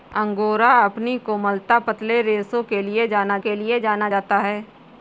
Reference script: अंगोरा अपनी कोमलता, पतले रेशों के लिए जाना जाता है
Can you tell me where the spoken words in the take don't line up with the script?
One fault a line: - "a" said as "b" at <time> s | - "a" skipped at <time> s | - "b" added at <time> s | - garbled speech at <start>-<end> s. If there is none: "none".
- "के लिए जाना" added at 3.4 s